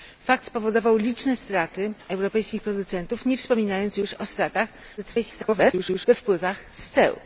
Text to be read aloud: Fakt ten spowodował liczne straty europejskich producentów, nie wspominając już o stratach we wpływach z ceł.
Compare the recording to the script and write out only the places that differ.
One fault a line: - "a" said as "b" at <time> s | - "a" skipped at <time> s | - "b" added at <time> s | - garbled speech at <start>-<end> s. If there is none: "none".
- "ten" skipped at 0.5 s
- garbled speech at 5.0-6.1 s